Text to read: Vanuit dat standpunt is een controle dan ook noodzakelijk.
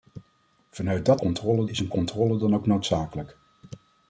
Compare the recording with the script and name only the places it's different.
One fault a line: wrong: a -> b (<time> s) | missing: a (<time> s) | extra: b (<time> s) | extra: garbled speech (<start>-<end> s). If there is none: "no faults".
wrong: standpunt -> controle (1.2 s)